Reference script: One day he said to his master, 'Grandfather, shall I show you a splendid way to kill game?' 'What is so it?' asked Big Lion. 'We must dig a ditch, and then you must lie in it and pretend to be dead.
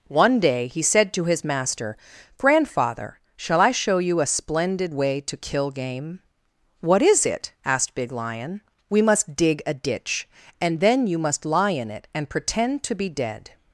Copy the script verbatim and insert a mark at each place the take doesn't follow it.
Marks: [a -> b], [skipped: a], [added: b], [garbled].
One day he said to his master, 'Grandfather, shall I show you a splendid way to kill game?' 'What is [skipped: so] it?' asked Big Lion. 'We must dig a ditch, and then you must lie in it and pretend to be dead.